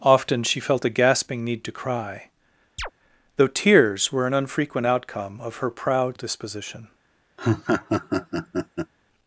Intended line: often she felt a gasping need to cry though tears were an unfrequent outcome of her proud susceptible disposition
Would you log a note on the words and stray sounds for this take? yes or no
yes